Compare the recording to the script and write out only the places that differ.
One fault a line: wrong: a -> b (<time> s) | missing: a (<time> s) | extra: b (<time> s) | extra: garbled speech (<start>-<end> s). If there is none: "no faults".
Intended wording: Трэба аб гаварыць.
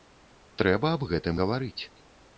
extra: гэтым (1.1 s)